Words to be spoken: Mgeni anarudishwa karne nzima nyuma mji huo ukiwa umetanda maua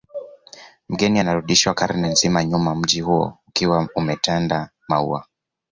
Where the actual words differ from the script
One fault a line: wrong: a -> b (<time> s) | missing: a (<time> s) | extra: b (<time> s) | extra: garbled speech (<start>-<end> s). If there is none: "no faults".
no faults